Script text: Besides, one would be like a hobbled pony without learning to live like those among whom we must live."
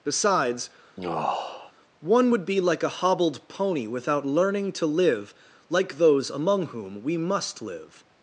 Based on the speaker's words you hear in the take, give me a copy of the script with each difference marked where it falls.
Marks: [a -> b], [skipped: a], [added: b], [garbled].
Besides, one would be like a hobbled pony without learning to live like those among whom we must live."